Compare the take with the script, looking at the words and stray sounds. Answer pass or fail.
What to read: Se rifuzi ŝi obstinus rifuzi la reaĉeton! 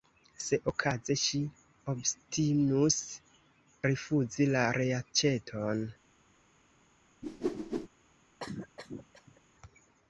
fail